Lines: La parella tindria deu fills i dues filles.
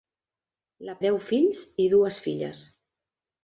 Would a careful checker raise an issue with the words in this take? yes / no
yes